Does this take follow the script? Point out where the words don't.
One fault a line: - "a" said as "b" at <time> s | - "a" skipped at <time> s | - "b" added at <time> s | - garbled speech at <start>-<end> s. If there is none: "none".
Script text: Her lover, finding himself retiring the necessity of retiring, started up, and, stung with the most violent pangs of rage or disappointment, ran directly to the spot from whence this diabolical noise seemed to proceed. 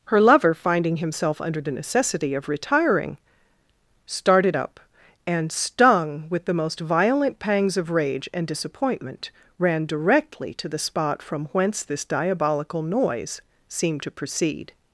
- "retiring" said as "under" at 1.4 s
- "or" said as "and" at 8.3 s